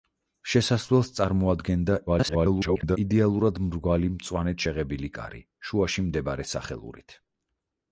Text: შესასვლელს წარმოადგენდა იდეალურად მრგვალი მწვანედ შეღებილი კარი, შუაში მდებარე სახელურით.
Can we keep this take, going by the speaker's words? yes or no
no